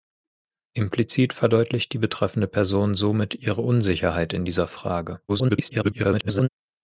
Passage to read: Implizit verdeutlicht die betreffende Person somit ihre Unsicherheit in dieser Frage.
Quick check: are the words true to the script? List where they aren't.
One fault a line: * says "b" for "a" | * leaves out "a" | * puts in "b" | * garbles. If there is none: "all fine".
* garbles